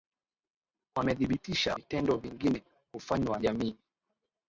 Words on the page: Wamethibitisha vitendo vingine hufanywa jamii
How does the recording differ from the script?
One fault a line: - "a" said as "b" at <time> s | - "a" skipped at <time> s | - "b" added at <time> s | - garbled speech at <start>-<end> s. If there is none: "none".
none